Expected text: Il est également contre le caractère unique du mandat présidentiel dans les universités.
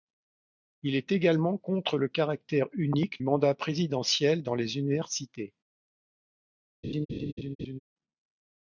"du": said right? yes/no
no